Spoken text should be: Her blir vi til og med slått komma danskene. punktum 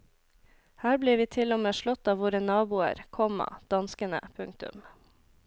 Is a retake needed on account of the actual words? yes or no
yes